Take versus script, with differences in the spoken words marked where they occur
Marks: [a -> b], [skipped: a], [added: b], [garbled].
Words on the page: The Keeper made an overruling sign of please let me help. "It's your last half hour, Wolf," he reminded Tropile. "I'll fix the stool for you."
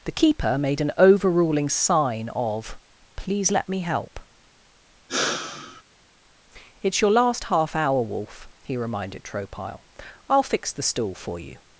The Keeper made an overruling sign of please let me help. "It's your last half hour, Wolf," he reminded Tropile. "I'll fix the stool for you."